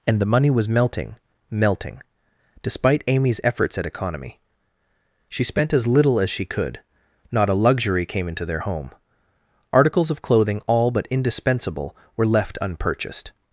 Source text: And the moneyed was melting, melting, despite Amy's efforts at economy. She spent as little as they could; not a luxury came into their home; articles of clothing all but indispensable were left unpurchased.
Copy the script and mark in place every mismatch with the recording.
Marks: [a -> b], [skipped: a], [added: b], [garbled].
And the [moneyed -> money] was melting, melting, despite Amy's efforts at economy. She spent as little as [they -> she] could; not a luxury came into their home; articles of clothing all but indispensable were left unpurchased.